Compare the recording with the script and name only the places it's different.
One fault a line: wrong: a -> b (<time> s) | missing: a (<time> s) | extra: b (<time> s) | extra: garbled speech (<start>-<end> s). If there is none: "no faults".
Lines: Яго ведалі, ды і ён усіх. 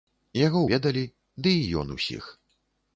no faults